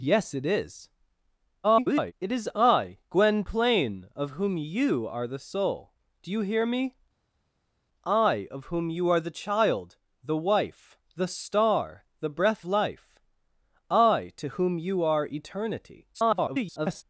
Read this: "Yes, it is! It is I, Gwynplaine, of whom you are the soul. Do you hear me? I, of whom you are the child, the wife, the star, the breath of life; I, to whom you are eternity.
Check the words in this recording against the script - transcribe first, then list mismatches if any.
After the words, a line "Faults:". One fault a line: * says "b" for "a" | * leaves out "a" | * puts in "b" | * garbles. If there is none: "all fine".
"Yes, it is! [garbled] It is I, Gwynplaine, of whom you are the soul. Do you hear me? I, of whom you are the child, the wife, the star, the breath life; I, to whom you are eternity. [garbled]
Faults:
* garbles
* leaves out "of"
* garbles